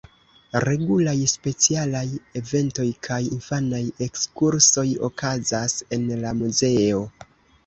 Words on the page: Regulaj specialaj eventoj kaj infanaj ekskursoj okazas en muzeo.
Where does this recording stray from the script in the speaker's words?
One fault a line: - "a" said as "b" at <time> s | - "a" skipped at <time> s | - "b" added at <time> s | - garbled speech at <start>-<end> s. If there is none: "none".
- "la" added at 6.3 s